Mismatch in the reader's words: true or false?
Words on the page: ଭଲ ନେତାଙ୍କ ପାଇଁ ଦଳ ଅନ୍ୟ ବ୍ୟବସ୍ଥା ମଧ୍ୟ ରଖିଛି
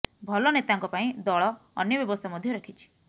false